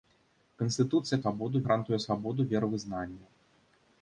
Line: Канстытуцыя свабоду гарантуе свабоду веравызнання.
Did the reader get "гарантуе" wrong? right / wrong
right